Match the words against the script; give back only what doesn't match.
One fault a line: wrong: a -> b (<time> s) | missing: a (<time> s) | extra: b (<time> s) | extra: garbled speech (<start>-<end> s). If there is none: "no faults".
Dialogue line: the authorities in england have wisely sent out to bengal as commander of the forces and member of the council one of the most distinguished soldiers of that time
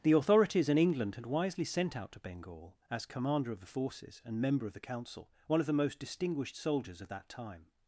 wrong: have -> had (1.1 s)